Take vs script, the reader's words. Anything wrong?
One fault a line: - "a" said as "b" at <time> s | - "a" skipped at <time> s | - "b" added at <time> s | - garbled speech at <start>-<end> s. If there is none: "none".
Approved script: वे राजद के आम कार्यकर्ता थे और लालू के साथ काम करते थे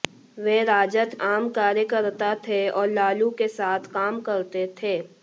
- "के" skipped at 1.1 s